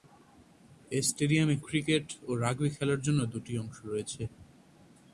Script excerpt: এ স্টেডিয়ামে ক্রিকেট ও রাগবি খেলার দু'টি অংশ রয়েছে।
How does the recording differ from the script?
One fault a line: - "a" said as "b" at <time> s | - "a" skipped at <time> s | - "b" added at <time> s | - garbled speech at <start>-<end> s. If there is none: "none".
- "জন্য" added at 3.0 s